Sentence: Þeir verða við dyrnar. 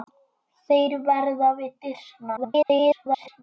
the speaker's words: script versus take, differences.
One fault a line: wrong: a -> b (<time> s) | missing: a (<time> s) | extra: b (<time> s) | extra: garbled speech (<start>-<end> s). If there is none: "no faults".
extra: garbled speech (2.4-3.4 s)